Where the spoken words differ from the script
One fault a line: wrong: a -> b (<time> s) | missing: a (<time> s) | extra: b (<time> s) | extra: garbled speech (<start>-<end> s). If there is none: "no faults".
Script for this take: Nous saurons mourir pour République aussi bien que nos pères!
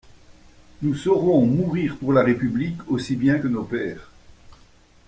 extra: la (2.1 s)